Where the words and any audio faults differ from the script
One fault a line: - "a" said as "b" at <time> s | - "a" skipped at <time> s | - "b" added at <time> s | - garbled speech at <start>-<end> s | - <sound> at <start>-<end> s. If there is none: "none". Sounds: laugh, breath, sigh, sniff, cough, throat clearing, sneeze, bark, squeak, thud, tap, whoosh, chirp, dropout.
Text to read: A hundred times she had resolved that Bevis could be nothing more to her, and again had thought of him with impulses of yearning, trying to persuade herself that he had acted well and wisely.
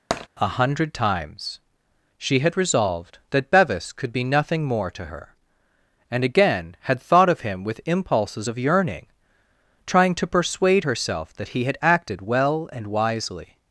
- tap at 0.1-0.3 s